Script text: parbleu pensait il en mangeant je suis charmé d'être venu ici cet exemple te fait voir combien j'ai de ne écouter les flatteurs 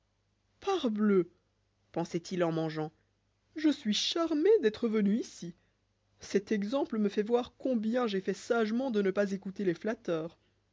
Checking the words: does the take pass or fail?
fail